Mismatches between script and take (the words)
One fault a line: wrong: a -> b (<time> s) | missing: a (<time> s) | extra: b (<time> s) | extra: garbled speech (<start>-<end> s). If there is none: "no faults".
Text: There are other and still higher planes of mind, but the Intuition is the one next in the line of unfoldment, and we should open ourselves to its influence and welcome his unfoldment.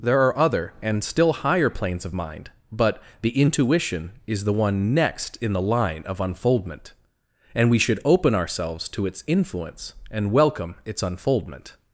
wrong: his -> its (10.9 s)